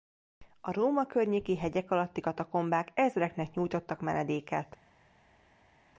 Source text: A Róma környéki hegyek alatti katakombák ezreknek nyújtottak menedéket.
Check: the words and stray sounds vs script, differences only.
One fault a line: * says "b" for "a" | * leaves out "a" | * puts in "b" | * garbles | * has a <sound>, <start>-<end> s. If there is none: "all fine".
all fine